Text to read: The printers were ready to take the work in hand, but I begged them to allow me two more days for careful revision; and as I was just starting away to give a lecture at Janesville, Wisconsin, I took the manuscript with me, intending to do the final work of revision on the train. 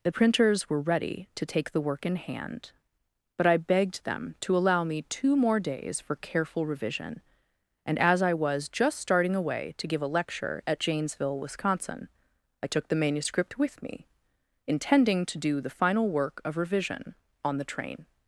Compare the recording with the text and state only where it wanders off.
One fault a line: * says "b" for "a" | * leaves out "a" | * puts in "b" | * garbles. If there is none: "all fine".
all fine